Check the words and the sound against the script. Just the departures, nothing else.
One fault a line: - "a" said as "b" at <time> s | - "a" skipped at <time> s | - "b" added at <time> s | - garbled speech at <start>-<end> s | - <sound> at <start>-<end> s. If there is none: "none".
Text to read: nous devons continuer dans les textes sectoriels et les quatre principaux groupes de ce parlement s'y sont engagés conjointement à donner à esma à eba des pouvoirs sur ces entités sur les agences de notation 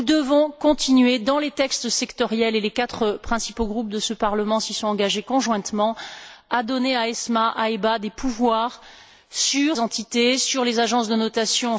- "ces" skipped at 9.8 s